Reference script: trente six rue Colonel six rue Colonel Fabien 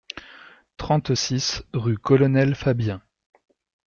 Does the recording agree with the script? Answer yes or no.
no